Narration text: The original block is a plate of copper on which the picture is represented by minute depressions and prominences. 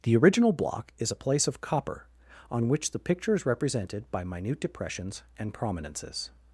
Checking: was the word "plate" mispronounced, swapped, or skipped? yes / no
yes